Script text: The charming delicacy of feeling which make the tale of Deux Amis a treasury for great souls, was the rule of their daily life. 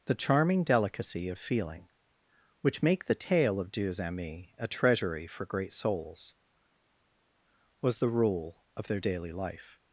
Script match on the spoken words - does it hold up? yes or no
yes